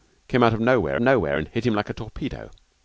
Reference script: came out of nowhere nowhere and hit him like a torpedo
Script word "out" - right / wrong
right